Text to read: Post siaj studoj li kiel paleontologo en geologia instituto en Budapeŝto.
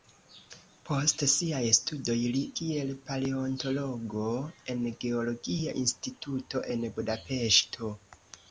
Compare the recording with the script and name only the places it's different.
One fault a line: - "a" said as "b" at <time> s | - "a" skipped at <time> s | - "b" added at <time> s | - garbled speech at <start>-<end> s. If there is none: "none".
none